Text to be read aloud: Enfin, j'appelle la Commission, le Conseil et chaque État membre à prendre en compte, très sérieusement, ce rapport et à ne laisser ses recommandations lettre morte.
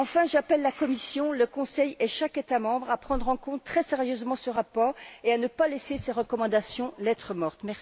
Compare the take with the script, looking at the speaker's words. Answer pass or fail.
fail